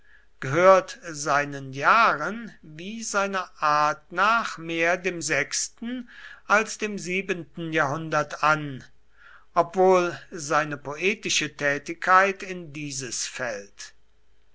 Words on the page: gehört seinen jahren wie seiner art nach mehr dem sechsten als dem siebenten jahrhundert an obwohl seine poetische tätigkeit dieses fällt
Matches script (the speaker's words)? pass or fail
fail